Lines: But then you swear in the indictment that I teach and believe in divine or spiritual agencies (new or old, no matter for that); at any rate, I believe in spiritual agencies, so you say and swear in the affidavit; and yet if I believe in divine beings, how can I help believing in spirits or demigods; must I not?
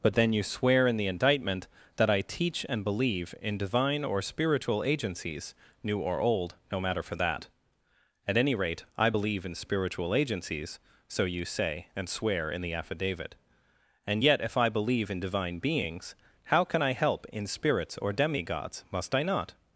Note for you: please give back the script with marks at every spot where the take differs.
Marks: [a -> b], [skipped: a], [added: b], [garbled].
But then you swear in the indictment that I teach and believe in divine or spiritual agencies (new or old, no matter for that); at any rate, I believe in spiritual agencies, so you say and swear in the affidavit; and yet if I believe in divine beings, how can I help [skipped: believing] in spirits or demigods; must I not?